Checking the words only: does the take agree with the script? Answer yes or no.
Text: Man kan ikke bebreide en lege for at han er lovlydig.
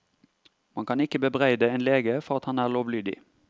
yes